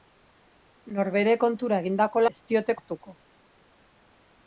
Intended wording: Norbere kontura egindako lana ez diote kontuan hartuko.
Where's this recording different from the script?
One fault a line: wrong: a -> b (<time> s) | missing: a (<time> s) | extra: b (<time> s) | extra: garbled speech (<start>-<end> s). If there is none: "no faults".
missing: lana (2.2 s)
missing: kontuan (2.8 s)